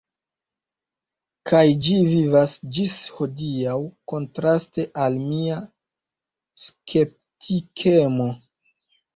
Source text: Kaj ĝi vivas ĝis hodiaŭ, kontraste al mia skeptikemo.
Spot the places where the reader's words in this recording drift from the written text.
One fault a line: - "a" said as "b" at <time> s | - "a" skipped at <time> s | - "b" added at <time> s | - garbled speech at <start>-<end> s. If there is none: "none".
none